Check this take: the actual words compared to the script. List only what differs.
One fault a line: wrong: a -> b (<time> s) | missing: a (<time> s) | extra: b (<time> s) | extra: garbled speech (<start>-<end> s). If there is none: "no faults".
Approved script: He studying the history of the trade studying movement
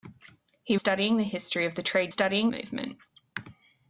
no faults